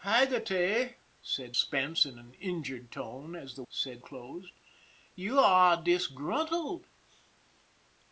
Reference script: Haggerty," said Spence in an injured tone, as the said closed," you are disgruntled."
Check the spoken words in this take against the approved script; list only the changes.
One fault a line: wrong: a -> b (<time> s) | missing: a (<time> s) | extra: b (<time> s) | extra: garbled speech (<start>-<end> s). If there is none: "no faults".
no faults